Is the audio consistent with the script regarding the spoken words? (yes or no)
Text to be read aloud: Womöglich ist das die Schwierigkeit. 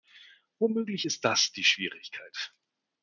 yes